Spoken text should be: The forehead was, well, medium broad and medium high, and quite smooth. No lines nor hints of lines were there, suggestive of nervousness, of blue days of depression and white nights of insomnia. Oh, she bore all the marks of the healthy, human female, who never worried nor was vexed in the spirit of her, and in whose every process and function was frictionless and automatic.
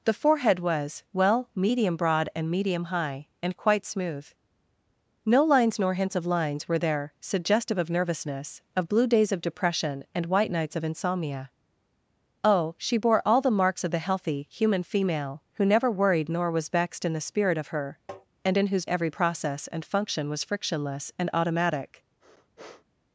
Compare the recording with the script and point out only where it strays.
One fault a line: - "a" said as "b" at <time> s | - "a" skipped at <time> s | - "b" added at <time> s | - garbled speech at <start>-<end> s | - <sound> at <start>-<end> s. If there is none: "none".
- tap at 18.1-18.3 s
- sniff at 22.2-22.9 s